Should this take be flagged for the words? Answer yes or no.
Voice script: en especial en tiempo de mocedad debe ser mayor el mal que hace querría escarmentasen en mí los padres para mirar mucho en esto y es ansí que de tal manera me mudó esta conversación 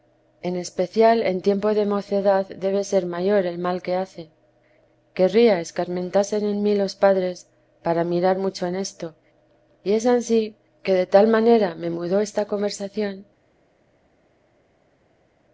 no